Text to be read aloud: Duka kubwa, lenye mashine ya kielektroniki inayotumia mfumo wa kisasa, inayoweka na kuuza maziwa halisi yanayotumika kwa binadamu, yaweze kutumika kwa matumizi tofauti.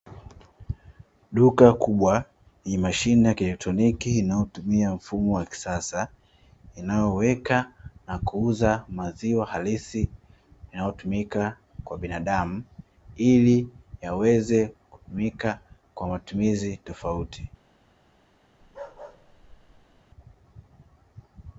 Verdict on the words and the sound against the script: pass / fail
fail